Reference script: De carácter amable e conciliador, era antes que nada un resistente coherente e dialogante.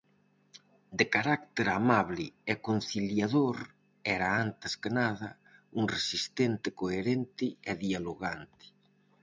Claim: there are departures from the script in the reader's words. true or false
false